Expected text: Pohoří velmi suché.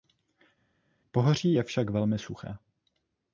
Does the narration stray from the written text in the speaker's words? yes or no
yes